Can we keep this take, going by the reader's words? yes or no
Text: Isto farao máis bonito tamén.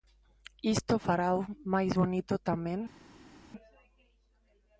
yes